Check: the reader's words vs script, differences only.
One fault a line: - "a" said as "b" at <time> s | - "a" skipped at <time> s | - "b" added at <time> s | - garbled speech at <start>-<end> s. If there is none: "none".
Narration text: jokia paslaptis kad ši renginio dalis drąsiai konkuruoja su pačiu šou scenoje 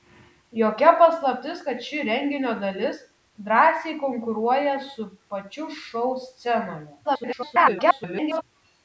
- garbled speech at 7.0-8.4 s